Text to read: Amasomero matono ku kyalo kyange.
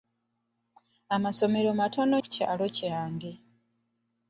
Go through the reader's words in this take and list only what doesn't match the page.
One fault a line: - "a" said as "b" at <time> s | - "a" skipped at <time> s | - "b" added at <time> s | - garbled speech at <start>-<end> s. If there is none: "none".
none